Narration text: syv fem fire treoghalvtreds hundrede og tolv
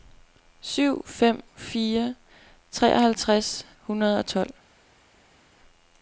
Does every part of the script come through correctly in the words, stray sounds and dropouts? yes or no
yes